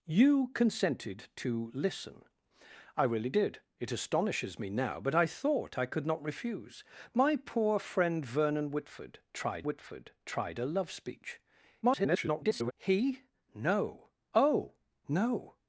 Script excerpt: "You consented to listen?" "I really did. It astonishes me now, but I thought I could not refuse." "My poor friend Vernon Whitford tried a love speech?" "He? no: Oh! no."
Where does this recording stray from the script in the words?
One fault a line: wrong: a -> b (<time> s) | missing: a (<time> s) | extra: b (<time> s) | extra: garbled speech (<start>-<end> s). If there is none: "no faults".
extra: Whitford tried (9.6 s)
extra: garbled speech (11.8-12.7 s)